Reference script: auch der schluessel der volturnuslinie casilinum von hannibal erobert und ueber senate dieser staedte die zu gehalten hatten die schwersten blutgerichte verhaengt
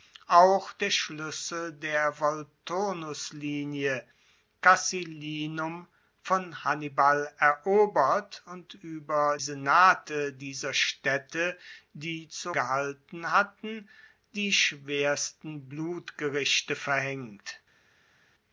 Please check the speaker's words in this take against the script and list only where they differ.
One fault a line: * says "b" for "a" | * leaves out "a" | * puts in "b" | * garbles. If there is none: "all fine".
all fine